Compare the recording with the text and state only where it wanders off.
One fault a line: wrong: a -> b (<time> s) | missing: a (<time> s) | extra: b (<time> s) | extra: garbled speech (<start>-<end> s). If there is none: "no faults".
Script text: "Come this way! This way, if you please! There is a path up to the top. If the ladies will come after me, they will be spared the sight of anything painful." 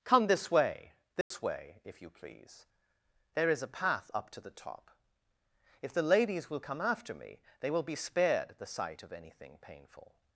no faults